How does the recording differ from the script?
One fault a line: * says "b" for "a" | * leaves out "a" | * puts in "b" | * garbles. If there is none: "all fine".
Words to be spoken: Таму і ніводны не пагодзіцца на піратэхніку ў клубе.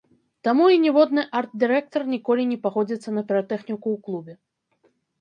* puts in "арт дырэктар ніколі"